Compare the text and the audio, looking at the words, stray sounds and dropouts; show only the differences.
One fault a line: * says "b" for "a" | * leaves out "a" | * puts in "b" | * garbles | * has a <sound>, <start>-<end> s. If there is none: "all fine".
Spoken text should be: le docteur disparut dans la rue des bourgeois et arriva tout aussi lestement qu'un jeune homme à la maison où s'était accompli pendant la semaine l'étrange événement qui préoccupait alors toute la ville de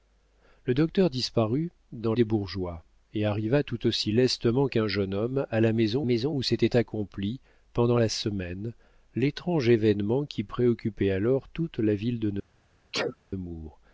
* leaves out "la rue"
* puts in "maison"
* has a sneeze, 12.9-13.2 s